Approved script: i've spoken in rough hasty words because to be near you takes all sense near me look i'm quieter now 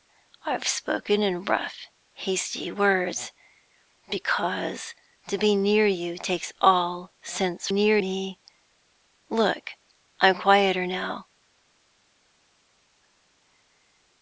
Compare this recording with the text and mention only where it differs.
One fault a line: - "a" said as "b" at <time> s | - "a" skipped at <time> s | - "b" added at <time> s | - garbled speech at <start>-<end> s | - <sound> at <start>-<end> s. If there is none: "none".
none